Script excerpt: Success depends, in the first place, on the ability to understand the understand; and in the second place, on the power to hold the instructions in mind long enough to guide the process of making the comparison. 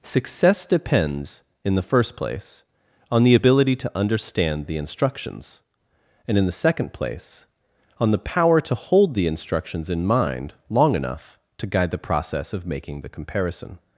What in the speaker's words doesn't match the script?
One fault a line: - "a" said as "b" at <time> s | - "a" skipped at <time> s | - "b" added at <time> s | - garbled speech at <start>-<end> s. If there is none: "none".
- "understand" said as "instructions" at 4.8 s